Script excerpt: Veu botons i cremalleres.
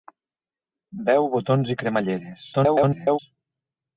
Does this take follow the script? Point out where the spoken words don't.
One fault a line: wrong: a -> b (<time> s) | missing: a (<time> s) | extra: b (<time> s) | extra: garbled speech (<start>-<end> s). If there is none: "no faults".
extra: garbled speech (2.5-3.2 s)